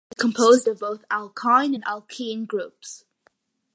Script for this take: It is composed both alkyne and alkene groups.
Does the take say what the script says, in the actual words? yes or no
no